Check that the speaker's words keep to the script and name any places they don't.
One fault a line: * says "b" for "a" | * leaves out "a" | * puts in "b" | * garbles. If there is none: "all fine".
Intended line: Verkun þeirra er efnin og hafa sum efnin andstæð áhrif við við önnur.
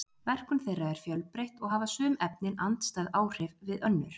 * says "fjölbreytt" for "efnin"
* leaves out "við"